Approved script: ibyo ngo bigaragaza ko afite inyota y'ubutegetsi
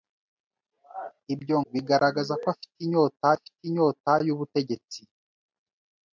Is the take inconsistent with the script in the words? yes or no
yes